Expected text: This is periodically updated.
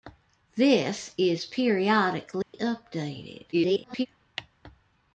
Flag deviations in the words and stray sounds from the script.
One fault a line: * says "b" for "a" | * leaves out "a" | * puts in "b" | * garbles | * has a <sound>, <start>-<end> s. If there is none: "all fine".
* has a dropout, 2.4-2.5 s
* garbles